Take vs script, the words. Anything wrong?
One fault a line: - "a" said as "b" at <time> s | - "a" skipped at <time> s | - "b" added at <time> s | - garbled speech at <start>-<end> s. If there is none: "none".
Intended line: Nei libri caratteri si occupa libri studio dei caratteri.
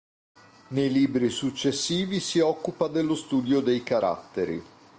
- "caratteri" said as "successivi" at 1.3 s
- "libri" said as "dello" at 2.9 s